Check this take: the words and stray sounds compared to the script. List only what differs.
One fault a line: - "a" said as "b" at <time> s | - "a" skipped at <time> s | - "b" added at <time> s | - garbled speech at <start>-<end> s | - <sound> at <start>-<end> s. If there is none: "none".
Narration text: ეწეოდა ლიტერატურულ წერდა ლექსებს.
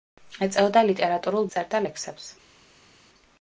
none